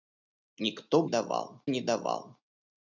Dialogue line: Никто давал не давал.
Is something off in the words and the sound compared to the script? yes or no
no